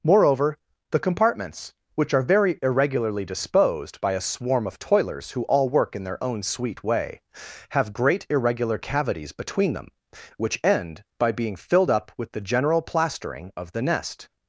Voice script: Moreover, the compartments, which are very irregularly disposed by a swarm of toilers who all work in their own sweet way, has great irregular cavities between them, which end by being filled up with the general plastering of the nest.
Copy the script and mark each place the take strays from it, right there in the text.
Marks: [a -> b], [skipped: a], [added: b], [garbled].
Moreover, the compartments, which are very irregularly disposed by a swarm of toilers who all work in their own sweet way, [has -> have] great irregular cavities between them, which end by being filled up with the general plastering of the nest.